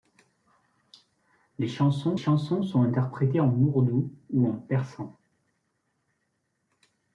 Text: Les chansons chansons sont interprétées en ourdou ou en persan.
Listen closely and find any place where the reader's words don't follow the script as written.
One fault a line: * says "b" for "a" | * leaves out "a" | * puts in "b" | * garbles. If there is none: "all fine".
all fine